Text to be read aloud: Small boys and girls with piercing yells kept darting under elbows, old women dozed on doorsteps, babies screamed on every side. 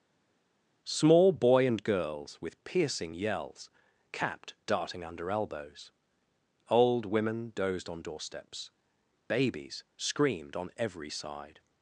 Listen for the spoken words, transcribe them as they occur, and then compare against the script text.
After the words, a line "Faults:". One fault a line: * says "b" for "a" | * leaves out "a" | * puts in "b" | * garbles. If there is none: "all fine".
Small boy and girls with piercing yells capped darting under elbows, old women dozed on doorsteps, babies screamed on every side.
Faults:
* says "boy" for "boys"
* says "capped" for "kept"